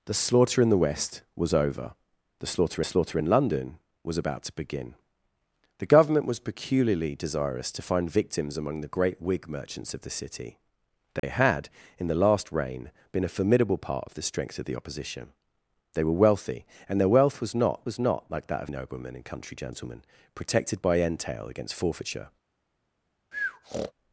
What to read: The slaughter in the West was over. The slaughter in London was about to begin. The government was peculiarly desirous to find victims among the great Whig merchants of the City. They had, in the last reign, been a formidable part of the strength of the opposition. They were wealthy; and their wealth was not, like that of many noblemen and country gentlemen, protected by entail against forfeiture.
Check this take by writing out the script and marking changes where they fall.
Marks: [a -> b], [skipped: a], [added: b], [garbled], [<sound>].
The slaughter in the West was over. The slaughter [added: slaughter] in London was about to begin. The government was peculiarly desirous to find victims among the great Whig merchants of the City. They [dropout] had, in the last reign, been a formidable part of the strength of the opposition. They were wealthy; and their wealth was not, [added: was not] like that of [skipped: many] noblemen and country gentlemen, protected by entail against forfeiture. [breath]